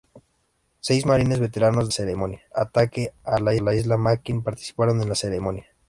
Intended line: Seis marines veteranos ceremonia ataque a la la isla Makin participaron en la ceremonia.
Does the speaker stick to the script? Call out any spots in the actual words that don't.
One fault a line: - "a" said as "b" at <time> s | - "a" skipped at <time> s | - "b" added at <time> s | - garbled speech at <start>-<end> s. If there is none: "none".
none